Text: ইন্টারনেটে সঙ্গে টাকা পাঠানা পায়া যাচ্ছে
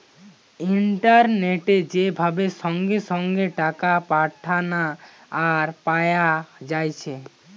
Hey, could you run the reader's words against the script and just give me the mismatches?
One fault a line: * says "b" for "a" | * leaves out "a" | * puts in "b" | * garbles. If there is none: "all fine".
* puts in "যে ভাবে"
* puts in "সঙ্গে"
* puts in "আর"